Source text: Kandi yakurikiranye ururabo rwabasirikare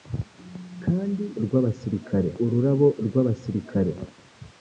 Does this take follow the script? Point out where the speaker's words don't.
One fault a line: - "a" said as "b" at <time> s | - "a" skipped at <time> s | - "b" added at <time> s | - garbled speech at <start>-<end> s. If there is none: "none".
- "yakurikiranye" said as "rwabasirikare" at 1.4 s